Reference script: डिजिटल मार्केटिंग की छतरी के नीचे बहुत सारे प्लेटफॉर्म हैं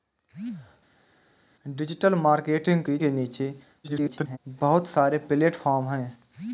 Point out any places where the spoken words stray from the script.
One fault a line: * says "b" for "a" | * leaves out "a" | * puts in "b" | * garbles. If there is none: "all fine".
* leaves out "छतरी"
* garbles